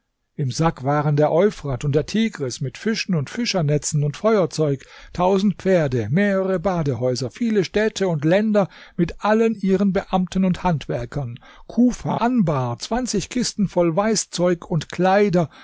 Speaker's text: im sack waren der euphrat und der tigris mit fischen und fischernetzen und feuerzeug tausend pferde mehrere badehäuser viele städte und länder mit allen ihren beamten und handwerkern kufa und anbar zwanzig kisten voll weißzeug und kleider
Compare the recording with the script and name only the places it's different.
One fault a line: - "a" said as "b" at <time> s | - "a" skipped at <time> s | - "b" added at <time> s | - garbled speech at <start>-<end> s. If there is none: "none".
- "und" skipped at 12.2 s